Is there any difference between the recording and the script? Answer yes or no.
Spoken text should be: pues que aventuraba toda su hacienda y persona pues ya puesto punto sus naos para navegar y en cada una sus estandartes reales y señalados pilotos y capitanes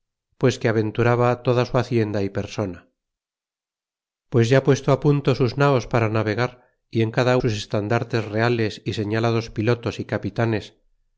yes